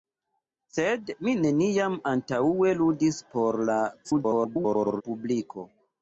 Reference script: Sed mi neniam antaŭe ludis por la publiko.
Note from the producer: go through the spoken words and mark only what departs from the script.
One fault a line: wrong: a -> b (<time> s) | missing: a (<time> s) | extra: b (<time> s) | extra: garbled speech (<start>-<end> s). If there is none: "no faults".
extra: garbled speech (4.0-5.0 s)